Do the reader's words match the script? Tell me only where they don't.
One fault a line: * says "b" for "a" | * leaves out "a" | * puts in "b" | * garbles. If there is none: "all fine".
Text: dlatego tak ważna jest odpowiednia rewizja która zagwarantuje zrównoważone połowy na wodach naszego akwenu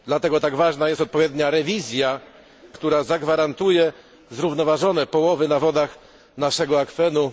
all fine